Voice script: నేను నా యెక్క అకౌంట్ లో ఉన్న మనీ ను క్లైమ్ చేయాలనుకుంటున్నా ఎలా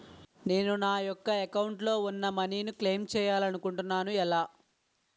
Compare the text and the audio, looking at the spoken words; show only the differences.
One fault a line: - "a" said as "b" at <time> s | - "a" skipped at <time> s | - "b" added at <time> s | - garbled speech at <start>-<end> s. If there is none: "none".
none